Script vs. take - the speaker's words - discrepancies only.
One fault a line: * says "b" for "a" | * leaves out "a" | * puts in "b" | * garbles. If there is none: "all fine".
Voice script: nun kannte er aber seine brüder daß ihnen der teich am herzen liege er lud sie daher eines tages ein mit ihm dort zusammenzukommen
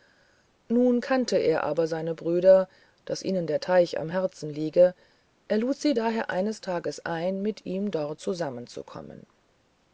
all fine